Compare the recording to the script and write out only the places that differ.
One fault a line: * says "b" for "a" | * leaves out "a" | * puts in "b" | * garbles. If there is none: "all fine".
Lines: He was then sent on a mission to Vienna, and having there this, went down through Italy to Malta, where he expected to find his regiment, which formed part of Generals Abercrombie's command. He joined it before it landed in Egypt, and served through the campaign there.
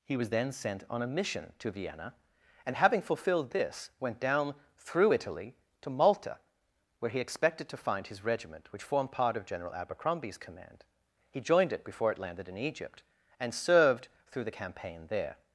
* says "fulfilled" for "there"
* says "General" for "Generals"